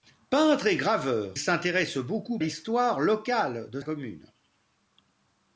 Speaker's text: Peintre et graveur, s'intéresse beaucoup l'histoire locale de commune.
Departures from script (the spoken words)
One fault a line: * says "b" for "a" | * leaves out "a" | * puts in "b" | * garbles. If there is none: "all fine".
all fine